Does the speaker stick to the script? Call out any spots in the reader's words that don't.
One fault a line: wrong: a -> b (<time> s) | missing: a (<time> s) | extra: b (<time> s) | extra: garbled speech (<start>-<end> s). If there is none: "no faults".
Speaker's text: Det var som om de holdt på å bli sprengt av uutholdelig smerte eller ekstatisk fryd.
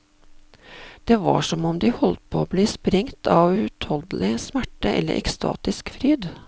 no faults